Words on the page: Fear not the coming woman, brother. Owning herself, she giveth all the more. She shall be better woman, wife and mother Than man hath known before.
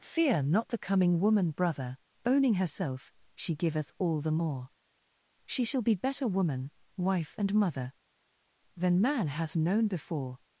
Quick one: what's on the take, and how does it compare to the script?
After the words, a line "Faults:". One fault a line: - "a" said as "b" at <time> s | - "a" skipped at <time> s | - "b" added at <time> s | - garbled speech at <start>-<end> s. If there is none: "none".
Fear not the coming woman, brother. Owning herself, she giveth all the more. She shall be better woman, wife and mother Than man hath known before.
Faults:
none